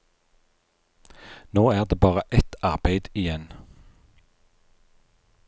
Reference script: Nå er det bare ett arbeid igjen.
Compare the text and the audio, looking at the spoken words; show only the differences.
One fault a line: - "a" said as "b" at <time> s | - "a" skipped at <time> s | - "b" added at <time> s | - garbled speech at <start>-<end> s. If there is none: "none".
none